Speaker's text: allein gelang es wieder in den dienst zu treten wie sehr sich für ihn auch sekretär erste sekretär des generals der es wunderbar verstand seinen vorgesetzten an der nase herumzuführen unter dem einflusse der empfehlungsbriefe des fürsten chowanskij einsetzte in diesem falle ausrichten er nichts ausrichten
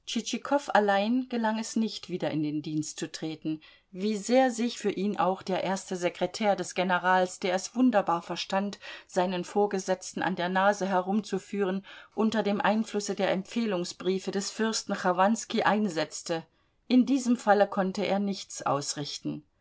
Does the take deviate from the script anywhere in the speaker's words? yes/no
yes